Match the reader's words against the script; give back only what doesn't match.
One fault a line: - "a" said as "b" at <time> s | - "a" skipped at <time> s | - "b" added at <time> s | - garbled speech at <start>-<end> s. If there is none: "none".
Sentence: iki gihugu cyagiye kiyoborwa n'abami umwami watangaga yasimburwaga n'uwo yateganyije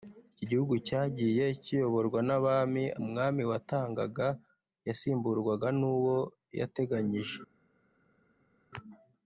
none